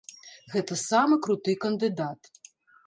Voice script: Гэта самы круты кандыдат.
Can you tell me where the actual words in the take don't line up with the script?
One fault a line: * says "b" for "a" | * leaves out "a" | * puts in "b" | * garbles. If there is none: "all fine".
all fine